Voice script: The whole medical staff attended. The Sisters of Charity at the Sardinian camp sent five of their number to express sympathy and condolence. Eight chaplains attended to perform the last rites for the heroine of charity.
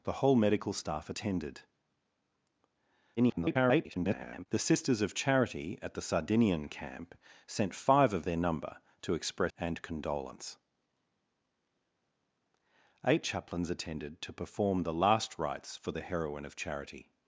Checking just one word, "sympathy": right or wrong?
wrong